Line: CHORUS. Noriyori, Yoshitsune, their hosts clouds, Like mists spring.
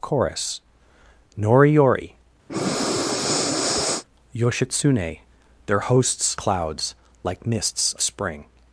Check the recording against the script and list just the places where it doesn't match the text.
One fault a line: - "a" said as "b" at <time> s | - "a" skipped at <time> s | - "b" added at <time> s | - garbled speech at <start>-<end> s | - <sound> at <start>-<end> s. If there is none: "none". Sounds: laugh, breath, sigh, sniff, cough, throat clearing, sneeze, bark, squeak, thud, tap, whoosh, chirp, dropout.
- breath at 2.5-4.0 s